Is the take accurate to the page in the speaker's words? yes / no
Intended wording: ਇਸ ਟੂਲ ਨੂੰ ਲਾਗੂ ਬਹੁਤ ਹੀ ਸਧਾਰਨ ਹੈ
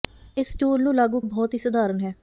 yes